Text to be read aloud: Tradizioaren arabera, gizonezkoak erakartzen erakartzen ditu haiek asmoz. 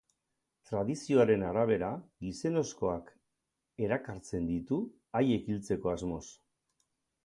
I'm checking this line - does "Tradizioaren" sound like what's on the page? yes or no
yes